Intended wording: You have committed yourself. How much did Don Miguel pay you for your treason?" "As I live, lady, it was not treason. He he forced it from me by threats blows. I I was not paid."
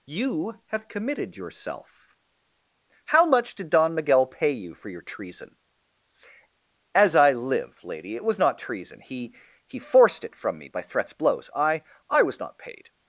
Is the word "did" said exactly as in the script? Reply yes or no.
yes